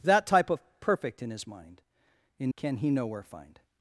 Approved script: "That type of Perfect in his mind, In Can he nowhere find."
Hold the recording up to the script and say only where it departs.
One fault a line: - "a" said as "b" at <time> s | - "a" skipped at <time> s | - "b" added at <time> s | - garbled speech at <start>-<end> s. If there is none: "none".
none